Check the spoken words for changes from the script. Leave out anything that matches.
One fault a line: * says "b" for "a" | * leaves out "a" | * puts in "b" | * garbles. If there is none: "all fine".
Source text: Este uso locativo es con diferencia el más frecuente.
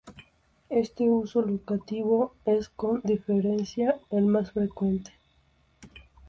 all fine